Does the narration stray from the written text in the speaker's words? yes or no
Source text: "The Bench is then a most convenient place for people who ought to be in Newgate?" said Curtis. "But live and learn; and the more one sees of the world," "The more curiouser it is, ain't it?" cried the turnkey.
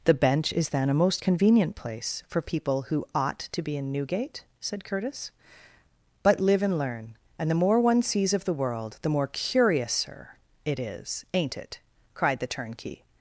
no